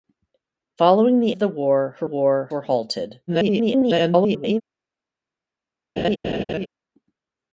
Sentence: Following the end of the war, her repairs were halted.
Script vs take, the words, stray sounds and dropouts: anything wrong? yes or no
yes